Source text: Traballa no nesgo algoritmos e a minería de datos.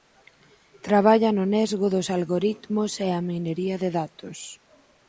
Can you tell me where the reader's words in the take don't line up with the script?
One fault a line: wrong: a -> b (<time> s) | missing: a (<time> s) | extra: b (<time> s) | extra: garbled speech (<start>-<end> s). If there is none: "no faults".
extra: dos (1.9 s)